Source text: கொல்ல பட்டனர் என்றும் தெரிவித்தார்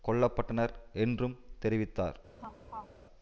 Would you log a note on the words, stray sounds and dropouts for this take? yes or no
yes